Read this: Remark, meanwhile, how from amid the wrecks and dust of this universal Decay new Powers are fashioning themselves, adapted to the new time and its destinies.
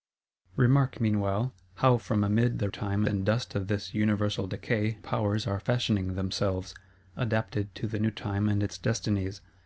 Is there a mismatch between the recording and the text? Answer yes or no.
yes